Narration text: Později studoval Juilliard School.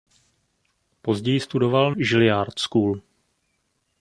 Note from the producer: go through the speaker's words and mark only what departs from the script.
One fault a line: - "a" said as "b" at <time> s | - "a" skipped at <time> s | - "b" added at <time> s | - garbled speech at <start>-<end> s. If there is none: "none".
none